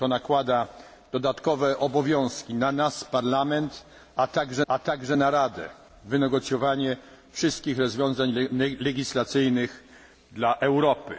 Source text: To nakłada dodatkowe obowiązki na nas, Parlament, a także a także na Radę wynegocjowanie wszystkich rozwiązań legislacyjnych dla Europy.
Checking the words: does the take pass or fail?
pass